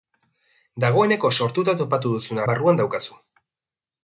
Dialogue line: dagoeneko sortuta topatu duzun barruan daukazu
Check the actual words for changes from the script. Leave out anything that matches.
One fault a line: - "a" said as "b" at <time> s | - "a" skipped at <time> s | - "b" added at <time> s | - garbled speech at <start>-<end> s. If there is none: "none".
none